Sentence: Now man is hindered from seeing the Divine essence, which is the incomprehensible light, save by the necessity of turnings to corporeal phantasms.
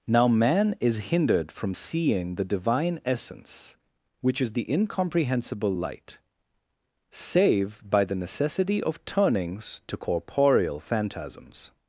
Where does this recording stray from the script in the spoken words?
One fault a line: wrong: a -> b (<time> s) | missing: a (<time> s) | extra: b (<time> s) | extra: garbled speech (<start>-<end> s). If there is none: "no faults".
no faults